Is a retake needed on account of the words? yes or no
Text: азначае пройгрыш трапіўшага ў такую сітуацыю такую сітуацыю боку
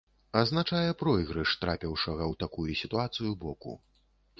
yes